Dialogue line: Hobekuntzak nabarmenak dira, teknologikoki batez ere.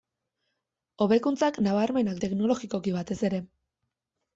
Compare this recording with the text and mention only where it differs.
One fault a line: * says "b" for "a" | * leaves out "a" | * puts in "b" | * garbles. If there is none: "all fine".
* leaves out "dira"